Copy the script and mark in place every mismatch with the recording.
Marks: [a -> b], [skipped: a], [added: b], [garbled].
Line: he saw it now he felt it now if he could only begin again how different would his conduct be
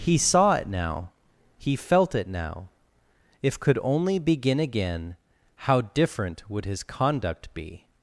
he saw it now he felt it now if [skipped: he] could only begin again how different would his conduct be